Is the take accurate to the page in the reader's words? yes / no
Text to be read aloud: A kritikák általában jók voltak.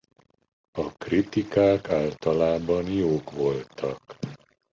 yes